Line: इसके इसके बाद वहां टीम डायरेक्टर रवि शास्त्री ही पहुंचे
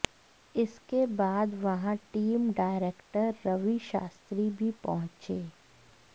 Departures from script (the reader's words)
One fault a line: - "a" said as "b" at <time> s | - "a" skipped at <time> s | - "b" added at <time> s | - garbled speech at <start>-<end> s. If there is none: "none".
- "इसके" skipped at 1.1 s
- "ही" said as "भी" at 4.5 s